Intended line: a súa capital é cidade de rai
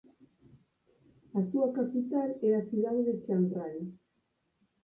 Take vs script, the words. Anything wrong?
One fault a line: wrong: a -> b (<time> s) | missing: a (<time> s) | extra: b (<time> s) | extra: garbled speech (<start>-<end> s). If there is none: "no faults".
extra: a (2.5 s)
extra: chiang (3.2 s)